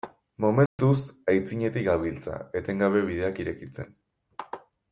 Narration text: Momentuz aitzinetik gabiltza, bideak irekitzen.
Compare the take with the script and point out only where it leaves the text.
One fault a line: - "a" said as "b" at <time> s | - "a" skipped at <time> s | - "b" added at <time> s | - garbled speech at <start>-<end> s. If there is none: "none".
- "etengabe" added at 2.6 s